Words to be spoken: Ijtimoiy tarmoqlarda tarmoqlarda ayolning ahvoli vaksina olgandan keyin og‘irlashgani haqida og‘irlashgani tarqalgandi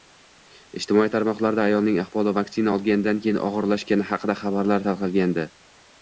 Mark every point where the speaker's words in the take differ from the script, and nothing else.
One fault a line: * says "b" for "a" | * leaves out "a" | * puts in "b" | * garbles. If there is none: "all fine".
* leaves out "tarmoqlarda"
* says "xabarlar" for "og‘irlashgani"